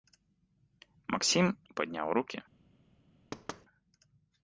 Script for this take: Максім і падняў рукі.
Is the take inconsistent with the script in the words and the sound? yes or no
yes